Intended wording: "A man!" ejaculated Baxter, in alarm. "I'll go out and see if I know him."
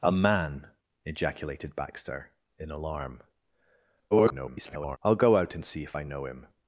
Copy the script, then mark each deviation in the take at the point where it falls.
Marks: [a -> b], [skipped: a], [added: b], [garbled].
"A man!" ejaculated Baxter, in alarm. [garbled] "I'll go out and see if I know him."